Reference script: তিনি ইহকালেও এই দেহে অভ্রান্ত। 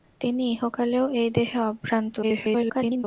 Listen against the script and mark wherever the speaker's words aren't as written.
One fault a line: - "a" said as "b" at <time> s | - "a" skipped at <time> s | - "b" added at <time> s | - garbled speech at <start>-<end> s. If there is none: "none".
- garbled speech at 2.2-3.0 s